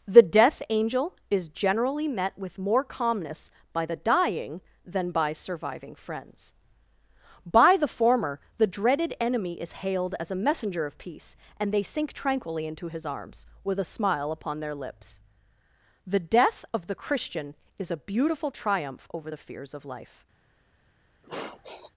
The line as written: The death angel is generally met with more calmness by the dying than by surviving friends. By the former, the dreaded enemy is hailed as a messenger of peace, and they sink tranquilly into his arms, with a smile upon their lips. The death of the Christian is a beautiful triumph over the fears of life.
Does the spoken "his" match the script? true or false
true